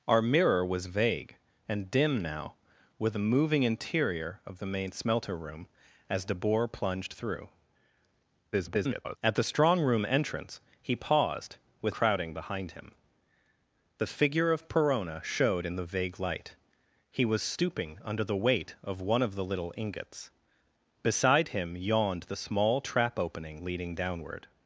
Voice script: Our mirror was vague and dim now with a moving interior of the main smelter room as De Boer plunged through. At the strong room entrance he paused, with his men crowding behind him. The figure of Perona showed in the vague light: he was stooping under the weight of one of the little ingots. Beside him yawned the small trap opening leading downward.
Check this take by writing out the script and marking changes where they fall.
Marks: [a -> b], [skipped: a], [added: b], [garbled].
Our mirror was vague and dim now with a moving interior of the main smelter room as De Boer plunged through. [garbled] At the strong room entrance he paused, with [skipped: his men] crowding behind him. The figure of Perona showed in the vague light: he was stooping under the weight of one of the little ingots. Beside him yawned the small trap opening leading downward.